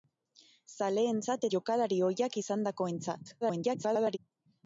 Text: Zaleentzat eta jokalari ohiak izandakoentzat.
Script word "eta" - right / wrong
wrong